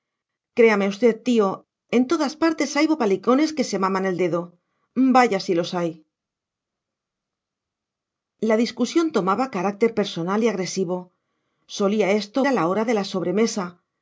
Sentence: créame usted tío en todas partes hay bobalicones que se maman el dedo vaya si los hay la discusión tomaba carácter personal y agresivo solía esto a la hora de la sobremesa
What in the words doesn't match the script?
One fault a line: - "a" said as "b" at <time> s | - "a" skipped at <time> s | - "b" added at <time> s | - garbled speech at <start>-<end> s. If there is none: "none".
none